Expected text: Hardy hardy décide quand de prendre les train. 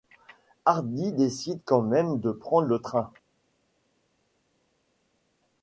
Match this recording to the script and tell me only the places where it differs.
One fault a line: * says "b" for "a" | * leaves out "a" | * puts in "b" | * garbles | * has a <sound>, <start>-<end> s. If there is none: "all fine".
* leaves out "hardy"
* puts in "même"
* says "le" for "les"